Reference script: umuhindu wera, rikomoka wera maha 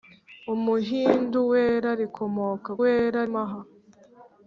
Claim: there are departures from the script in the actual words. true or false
false